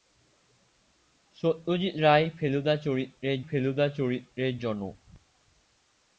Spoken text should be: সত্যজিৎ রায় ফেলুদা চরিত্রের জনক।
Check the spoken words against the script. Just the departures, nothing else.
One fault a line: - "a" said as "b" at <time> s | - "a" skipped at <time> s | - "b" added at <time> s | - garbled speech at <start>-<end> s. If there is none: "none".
- "ফেলুদা চরিত্রের" added at 3.5 s